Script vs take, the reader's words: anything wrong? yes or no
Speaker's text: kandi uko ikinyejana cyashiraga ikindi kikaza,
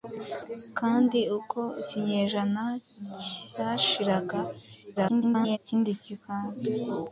yes